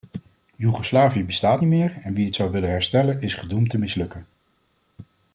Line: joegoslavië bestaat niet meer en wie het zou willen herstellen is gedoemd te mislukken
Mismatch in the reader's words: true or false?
false